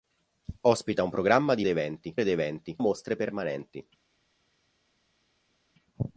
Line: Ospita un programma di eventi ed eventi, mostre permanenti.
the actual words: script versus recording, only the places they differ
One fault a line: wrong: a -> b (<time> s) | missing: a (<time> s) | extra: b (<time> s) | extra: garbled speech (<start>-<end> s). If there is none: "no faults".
no faults